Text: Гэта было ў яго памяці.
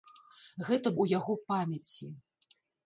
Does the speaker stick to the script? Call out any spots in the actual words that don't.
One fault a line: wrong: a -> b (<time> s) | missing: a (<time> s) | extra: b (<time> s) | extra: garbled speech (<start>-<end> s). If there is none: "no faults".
missing: было (0.9 s)